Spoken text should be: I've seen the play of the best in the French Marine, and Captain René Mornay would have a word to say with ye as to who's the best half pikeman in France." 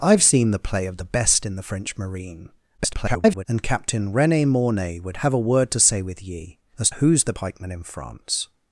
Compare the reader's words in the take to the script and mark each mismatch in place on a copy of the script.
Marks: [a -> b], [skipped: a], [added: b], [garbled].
I've seen the play of the best in the French Marine, [garbled] and Captain René Mornay would have a word to say with ye as [skipped: to] who's the [skipped: best half] pikeman in France."